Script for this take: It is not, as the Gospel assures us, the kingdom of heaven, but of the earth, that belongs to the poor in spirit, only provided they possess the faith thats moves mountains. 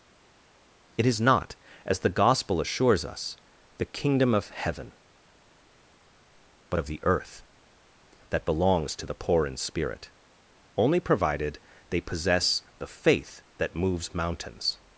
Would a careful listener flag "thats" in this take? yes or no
yes